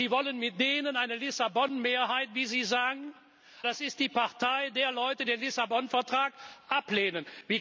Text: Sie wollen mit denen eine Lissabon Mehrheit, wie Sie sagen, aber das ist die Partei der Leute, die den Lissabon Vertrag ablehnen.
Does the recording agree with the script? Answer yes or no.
no